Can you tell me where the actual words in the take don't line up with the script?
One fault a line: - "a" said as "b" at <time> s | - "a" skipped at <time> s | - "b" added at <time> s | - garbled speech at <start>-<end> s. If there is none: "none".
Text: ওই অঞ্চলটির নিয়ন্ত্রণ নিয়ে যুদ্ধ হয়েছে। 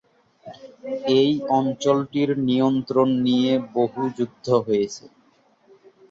- "ওই" said as "এই" at 1.1 s
- "বহু" added at 3.7 s